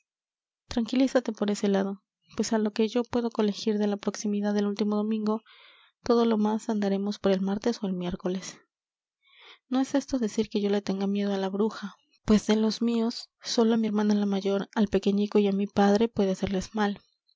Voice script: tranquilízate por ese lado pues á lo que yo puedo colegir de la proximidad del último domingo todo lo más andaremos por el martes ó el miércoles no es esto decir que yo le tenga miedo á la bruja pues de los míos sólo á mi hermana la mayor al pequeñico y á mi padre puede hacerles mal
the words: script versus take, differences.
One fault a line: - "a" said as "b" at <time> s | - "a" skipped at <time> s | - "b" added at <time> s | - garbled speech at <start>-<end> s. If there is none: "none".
none